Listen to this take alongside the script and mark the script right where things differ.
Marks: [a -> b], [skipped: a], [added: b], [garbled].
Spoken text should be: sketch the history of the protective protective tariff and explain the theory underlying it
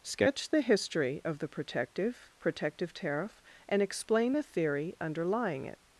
sketch the history of the protective protective tariff and explain the theory underlying it